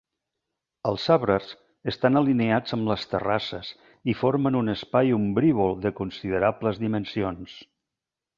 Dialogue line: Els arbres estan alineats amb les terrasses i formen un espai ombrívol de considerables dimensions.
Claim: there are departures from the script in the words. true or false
false